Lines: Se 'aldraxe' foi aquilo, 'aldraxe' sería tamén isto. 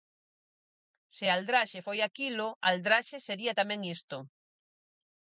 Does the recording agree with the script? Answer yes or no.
yes